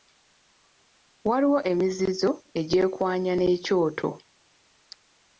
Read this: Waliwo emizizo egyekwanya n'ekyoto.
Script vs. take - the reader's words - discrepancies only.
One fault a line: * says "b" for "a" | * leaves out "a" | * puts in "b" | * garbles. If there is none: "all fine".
all fine